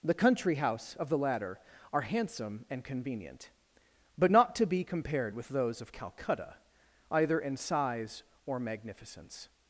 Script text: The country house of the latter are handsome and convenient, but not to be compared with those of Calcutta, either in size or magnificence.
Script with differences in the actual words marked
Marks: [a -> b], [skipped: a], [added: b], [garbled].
The country house of the latter are handsome and convenient, but not to be compared with those of Calcutta, either in size or magnificence.